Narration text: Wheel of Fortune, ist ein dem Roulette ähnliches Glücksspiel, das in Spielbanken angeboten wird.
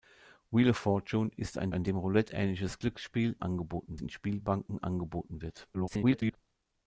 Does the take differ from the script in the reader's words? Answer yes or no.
yes